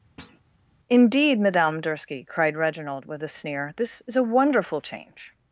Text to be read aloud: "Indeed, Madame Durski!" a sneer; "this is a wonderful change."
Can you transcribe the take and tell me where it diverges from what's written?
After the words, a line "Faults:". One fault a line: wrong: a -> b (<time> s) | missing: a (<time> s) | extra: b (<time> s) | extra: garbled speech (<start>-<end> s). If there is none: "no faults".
"Indeed, Madame Durski!" cried Reginald, with a sneer; "this is a wonderful change."
Faults:
extra: cried Reginald with (2.2 s)